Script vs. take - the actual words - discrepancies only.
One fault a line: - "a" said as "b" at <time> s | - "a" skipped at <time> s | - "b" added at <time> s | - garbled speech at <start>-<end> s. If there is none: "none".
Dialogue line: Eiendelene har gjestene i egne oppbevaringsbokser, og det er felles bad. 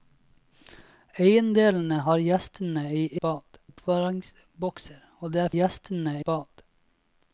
- "egne" said as "bad" at 3.2 s
- "felles" said as "gjestene" at 5.5 s